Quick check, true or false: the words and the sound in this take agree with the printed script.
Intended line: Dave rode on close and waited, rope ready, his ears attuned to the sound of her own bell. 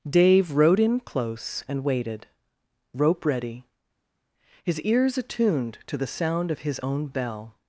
false